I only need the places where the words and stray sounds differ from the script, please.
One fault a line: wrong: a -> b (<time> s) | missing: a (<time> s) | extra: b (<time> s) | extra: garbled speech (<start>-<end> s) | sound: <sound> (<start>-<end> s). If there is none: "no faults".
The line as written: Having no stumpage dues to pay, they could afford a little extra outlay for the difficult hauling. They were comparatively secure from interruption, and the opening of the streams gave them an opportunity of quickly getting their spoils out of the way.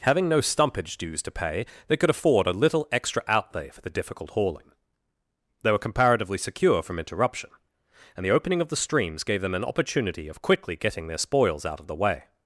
no faults